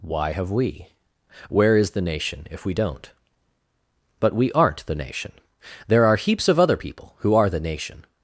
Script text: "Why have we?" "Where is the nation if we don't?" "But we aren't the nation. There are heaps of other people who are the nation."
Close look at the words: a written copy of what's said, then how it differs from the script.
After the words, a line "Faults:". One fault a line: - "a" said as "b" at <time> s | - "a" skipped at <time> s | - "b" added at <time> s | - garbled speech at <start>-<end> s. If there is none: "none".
"Why have we?" "Where is the nation if we don't?" "But we aren't the nation. There are heaps of other people who are the nation."
Faults:
none